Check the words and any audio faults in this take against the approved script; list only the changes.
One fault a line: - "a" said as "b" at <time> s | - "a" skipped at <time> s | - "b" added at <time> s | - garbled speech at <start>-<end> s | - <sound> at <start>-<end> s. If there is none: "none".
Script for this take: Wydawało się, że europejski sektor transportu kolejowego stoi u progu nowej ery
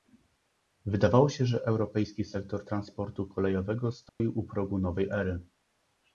- dropout at 4.1-4.2 s